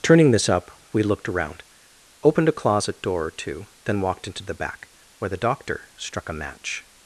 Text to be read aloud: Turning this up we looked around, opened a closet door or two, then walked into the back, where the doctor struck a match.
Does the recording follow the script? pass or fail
pass